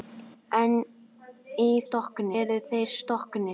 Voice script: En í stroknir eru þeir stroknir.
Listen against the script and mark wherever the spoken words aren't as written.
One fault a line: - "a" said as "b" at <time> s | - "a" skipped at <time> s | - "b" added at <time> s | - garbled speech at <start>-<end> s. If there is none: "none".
none